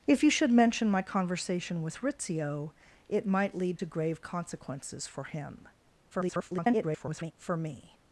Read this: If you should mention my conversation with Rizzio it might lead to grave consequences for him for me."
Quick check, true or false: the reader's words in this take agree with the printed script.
false